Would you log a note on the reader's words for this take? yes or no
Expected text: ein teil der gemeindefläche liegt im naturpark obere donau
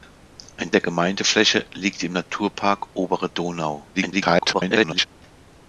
yes